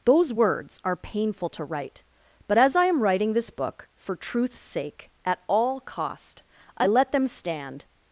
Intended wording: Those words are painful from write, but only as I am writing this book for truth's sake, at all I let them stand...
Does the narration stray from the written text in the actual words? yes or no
yes